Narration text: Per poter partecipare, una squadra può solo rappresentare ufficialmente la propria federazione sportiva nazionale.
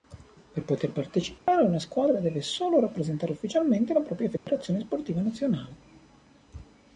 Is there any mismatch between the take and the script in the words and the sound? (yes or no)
yes